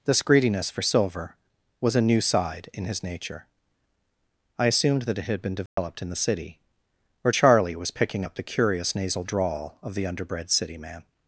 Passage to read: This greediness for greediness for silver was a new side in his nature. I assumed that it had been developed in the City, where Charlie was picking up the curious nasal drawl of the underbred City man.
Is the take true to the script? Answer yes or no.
no